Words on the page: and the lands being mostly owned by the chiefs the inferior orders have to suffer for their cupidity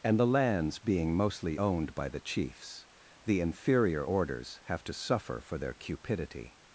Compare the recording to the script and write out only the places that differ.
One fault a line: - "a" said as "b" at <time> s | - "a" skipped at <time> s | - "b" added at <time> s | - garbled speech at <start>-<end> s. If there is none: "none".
none